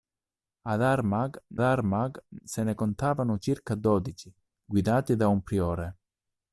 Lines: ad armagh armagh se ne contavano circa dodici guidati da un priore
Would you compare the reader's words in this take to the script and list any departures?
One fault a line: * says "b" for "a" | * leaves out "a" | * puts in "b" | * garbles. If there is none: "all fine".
all fine